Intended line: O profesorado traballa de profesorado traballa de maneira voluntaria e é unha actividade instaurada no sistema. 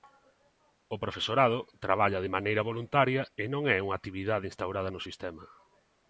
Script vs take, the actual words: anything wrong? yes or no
yes